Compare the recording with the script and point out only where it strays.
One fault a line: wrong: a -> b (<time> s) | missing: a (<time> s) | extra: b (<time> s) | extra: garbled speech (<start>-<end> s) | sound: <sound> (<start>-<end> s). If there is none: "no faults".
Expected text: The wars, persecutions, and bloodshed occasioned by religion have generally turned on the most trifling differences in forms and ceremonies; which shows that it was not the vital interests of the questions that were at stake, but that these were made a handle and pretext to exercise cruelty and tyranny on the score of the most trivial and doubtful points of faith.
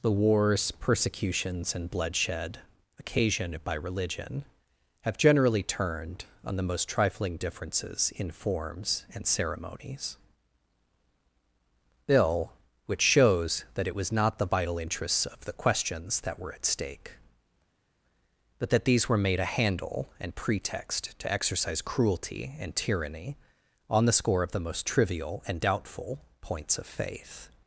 extra: bill (12.1 s)